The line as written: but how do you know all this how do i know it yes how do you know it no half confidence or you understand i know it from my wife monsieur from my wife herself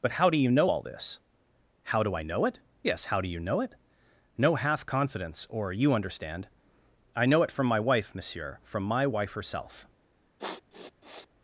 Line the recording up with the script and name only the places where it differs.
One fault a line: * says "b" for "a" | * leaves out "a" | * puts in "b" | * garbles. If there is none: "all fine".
* says "hath" for "half"